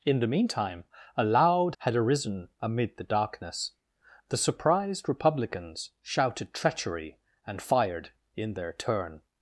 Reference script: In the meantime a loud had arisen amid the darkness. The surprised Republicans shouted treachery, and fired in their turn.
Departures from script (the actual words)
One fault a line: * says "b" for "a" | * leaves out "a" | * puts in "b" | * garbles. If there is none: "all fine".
all fine